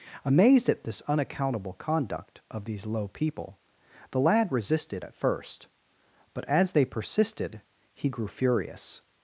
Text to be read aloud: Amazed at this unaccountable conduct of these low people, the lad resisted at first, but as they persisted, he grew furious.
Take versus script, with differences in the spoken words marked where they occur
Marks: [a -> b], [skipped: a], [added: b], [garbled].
Amazed at this unaccountable conduct of these low people, the lad resisted at first, but as they persisted, he grew furious.